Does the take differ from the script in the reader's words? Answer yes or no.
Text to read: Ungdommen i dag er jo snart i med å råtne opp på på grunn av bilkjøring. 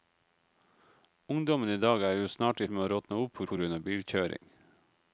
no